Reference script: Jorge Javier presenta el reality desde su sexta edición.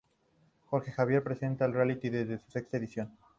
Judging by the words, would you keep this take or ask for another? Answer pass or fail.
pass